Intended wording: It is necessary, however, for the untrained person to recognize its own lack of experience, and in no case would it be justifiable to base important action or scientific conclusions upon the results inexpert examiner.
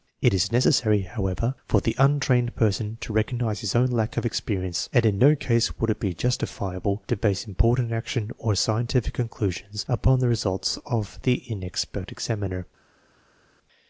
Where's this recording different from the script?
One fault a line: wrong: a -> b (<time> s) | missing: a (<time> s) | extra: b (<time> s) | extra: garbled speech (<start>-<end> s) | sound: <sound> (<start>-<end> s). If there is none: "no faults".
wrong: its -> his (3.6 s)
extra: of the (10.8 s)